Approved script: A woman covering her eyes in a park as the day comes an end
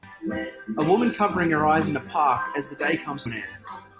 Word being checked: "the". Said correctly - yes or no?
yes